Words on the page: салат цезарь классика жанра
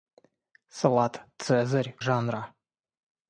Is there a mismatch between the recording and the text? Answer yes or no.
yes